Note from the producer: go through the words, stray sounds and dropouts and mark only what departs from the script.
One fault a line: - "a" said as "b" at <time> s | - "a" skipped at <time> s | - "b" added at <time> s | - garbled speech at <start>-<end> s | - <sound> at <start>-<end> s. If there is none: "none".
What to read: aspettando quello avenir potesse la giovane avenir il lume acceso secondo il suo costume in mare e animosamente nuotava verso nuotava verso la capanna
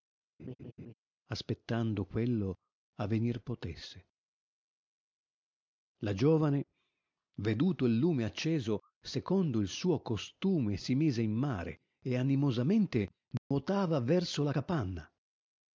- laugh at 0.4-0.9 s
- "avenir" said as "veduto" at 7.4 s
- "si mise" added at 10.8 s
- dropout at 13.4-13.5 s
- "nuotava verso" skipped at 14.4 s